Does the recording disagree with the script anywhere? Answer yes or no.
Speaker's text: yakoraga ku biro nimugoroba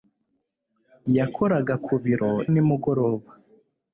no